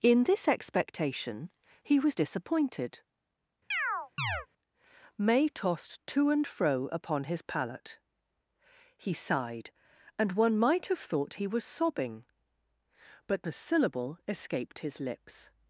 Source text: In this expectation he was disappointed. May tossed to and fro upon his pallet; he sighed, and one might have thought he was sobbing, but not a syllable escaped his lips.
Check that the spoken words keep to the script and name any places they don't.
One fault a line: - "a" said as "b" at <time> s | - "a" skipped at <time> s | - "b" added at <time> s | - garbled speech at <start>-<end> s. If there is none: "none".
- "not" skipped at 13.5 s